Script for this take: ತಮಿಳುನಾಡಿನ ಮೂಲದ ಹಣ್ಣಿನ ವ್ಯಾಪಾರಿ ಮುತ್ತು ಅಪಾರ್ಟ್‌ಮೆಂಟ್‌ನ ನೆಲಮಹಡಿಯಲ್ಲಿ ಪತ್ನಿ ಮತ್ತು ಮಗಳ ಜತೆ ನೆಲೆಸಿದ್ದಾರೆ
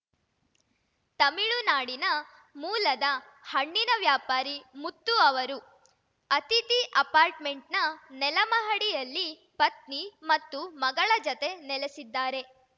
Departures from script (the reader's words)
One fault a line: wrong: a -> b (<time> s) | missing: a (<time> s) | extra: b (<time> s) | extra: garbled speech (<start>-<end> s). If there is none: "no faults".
extra: ಅವರು ಅತಿಥಿ (5.2 s)